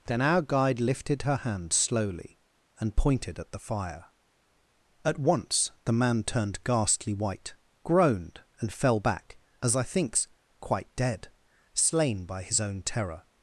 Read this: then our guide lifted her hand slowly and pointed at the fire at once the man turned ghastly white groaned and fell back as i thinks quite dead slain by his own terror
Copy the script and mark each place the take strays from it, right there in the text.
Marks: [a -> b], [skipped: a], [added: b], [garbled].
then our guide lifted her hand slowly and pointed at the fire at once the man turned ghastly white groaned and fell back as i thinks quite dead slain by his own terror